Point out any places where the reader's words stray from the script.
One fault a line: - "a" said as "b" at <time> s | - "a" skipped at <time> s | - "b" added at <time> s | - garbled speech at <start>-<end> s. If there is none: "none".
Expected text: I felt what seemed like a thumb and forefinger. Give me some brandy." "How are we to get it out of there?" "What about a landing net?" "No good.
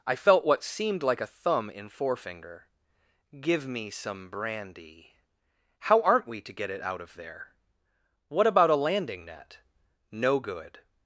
- "and" said as "in" at 1.7 s
- "are" said as "aren't" at 6.0 s